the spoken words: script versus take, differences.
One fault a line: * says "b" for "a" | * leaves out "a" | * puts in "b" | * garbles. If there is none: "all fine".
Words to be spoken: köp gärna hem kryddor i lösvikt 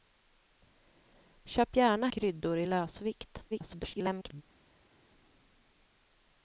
* leaves out "hem"
* garbles